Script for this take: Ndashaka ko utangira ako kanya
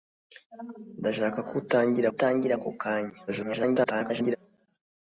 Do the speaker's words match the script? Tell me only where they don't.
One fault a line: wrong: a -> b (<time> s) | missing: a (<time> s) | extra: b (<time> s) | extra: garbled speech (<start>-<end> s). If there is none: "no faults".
extra: utangira (2.1 s)
extra: garbled speech (3.3-4.4 s)